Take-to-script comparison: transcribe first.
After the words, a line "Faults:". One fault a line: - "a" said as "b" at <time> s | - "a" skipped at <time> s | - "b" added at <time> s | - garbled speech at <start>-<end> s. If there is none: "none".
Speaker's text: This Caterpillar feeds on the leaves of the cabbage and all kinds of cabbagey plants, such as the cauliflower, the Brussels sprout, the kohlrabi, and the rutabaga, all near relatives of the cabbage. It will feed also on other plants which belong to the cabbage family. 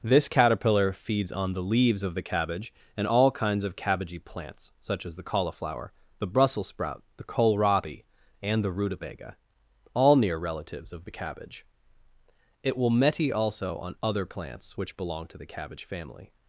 This Caterpillar feeds on the leaves of the cabbage and all kinds of cabbagey plants, such as the cauliflower, the Brussels sprout, the kohlrabi, and the rutabaga, all near relatives of the cabbage. It will meti also on other plants which belong to the cabbage family.
Faults:
- "feed" said as "meti" at 12.9 s